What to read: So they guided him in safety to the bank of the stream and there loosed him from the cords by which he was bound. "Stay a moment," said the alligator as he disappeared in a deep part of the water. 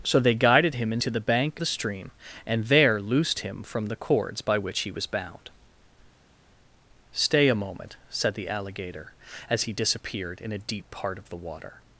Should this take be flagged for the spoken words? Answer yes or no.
yes